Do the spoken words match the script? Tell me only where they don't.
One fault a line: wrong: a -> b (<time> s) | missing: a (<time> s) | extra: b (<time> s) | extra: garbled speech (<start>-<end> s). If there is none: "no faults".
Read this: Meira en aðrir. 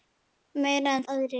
no faults